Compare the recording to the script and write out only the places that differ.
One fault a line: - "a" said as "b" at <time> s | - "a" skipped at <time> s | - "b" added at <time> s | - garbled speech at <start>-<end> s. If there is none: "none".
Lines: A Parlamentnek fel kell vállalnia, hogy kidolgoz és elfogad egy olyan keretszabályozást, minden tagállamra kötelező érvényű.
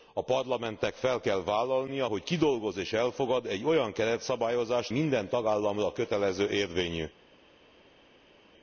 none